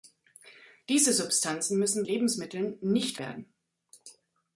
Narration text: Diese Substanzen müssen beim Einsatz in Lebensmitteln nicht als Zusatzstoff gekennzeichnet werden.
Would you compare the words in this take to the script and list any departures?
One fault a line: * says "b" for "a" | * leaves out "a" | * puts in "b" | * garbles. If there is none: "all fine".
* leaves out "beim Einsatz in"
* leaves out "als Zusatzstoff gekennzeichnet"